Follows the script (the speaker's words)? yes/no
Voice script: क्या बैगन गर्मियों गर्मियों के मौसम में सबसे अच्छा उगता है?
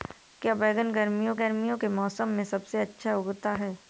yes